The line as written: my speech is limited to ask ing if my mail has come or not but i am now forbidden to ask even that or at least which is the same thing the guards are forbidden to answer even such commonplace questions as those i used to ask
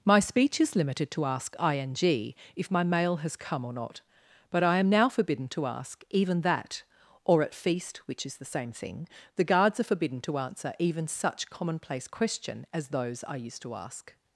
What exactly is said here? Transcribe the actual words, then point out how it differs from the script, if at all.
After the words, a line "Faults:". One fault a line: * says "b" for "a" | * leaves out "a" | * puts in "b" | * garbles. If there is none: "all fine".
my speech is limited to ask ing if my mail has come or not but i am now forbidden to ask even that or at feast which is the same thing the guards are forbidden to answer even such commonplace question as those i used to ask
Faults:
* says "feast" for "least"
* says "question" for "questions"